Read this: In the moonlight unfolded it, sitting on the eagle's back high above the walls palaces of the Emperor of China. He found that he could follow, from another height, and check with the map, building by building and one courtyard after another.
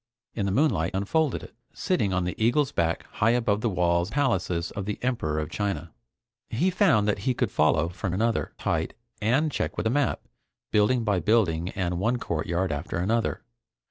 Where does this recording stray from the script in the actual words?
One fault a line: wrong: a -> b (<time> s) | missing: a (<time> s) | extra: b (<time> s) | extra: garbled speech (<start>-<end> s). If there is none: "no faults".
no faults